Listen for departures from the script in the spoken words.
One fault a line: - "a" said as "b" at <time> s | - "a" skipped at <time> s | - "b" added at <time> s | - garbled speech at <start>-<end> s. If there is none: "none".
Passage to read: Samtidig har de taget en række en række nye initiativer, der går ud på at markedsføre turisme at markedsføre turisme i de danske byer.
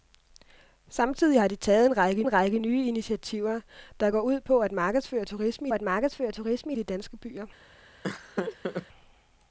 none